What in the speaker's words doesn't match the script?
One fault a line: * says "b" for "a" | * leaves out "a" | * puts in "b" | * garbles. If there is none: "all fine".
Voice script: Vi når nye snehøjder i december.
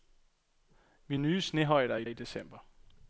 * leaves out "når"
* puts in "i"